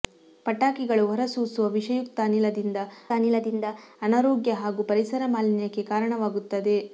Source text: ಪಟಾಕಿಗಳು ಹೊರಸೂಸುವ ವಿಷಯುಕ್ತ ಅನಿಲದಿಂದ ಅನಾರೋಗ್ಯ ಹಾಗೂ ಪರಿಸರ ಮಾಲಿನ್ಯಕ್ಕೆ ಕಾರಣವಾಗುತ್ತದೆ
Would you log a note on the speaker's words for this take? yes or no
yes